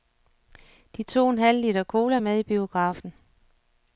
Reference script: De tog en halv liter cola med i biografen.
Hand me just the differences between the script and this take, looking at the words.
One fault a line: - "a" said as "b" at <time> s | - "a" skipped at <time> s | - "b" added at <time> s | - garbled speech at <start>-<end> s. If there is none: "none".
none